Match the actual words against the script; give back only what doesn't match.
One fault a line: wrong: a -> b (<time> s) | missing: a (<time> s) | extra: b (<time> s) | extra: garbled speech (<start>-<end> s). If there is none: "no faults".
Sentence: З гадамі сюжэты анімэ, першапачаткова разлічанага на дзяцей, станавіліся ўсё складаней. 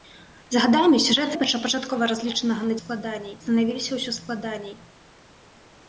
missing: анімэ (1.4 s)
wrong: дзяцей -> складаней (2.8 s)